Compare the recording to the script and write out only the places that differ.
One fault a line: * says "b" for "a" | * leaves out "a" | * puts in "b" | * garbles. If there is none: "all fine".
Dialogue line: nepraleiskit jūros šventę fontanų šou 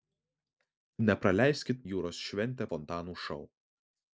all fine